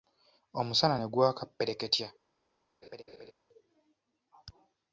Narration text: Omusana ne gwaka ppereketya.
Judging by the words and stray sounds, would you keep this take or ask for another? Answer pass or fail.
fail